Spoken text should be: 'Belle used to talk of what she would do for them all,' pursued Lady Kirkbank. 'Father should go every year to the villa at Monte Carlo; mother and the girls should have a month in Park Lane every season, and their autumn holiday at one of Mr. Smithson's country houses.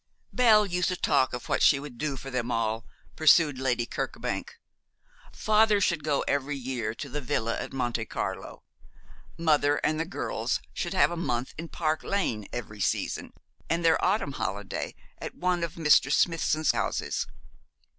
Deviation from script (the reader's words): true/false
true